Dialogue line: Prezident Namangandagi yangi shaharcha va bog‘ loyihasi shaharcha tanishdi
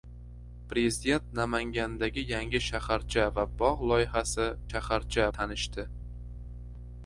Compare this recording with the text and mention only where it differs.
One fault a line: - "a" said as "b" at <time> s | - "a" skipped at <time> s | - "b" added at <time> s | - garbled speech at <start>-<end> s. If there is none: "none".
none